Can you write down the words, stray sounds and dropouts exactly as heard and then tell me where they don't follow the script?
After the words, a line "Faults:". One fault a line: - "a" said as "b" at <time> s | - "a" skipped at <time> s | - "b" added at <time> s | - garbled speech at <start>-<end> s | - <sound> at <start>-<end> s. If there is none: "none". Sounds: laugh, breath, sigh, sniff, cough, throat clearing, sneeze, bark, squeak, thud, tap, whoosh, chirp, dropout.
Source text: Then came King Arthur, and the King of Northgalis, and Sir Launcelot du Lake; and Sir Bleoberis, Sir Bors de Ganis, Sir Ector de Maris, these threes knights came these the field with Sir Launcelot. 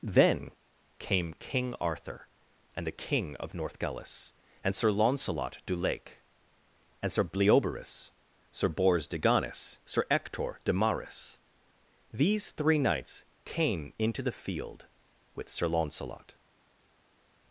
Then came King Arthur, and the King of Northgalis, and Sir Launcelot du Lake; and Sir Bleoberis, Sir Bors de Ganis, Sir Ector de Maris, these three knights came into the field with Sir Launcelot.
Faults:
- "threes" said as "three" at 12.5 s
- "these" said as "into" at 14.0 s